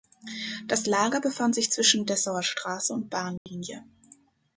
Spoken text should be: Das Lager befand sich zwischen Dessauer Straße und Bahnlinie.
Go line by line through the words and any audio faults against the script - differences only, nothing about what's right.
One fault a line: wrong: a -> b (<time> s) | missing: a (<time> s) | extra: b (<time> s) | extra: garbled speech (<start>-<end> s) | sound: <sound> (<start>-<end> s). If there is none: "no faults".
sound: dropout (3.4-3.5 s)